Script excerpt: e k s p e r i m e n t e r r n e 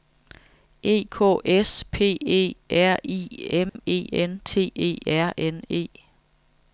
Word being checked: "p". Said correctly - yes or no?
yes